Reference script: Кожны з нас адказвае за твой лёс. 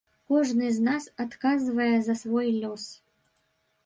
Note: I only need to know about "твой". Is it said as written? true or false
false